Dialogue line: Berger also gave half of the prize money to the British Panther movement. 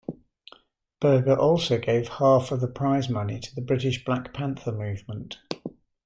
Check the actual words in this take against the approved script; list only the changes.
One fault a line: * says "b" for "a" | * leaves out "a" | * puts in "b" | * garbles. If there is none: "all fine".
* puts in "Black"